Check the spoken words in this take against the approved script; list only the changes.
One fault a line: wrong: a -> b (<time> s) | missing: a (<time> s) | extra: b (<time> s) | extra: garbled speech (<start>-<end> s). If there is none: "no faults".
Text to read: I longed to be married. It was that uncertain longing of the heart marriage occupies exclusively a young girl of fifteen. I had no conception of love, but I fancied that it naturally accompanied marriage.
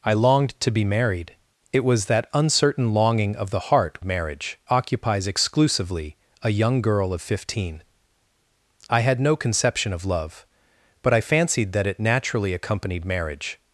no faults